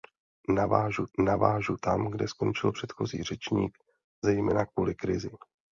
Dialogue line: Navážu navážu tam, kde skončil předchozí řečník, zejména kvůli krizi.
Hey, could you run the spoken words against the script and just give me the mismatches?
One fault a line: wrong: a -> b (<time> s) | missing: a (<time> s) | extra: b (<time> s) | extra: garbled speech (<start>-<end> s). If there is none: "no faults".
no faults